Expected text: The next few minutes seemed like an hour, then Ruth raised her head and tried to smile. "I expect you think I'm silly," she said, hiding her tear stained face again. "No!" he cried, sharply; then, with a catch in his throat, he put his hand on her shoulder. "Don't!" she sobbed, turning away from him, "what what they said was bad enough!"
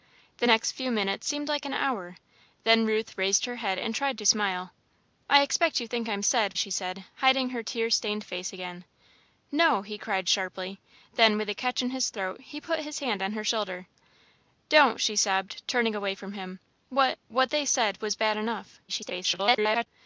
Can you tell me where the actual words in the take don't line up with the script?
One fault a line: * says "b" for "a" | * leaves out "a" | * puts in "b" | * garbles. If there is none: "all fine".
* says "said" for "silly"
* garbles